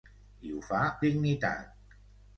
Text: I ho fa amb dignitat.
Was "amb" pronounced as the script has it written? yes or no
no